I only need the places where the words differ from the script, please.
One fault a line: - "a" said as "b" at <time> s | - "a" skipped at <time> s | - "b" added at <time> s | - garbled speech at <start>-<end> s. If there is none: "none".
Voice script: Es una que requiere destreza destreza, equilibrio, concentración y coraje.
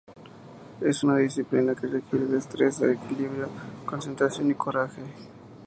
- "disciplina" added at 1.2 s
- "destreza" skipped at 2.8 s